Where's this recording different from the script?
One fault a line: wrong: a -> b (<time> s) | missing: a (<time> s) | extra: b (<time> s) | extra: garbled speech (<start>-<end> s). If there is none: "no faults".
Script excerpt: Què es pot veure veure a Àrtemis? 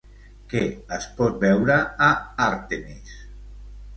missing: veure (1.8 s)